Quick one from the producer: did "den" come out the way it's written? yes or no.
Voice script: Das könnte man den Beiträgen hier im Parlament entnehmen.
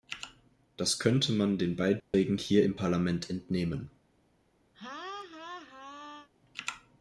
yes